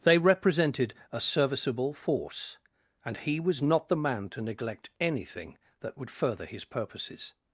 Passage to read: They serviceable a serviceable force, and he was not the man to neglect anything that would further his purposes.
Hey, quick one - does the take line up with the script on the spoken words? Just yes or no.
no